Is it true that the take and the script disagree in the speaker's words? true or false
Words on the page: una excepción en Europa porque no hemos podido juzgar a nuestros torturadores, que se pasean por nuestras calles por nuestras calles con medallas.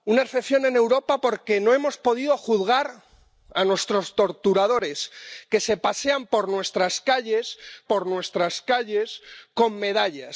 false